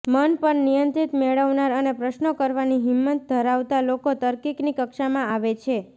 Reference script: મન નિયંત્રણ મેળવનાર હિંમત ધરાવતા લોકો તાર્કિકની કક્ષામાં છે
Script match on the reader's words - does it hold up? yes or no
no